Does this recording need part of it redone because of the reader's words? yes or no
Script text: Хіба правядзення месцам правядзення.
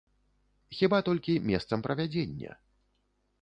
yes